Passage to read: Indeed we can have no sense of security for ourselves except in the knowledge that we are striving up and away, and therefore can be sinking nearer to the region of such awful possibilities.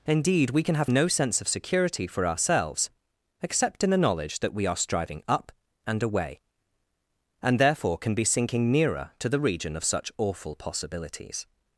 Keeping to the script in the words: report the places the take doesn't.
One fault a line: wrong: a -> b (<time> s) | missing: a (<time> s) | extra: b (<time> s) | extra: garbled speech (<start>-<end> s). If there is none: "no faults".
no faults